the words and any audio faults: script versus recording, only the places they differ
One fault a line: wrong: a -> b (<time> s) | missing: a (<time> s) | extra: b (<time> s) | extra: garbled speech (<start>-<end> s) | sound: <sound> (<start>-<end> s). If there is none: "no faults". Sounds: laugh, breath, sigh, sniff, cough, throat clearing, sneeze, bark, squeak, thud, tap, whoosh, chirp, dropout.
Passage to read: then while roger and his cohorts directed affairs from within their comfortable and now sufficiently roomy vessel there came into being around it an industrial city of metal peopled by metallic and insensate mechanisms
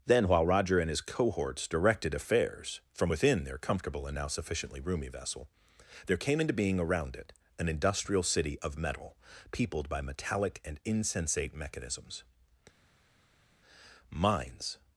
extra: mines (14.1 s)